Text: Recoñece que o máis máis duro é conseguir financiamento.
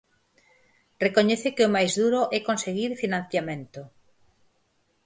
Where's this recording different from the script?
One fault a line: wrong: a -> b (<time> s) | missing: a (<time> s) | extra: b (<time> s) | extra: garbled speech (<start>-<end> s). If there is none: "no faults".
missing: máis (1.9 s)